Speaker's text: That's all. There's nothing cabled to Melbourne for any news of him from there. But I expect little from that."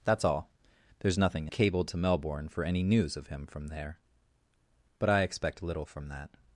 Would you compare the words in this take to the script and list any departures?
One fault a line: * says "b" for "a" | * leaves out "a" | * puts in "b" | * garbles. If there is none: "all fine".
all fine